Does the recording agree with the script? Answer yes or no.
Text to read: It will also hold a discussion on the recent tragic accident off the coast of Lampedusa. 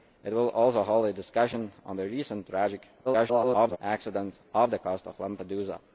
no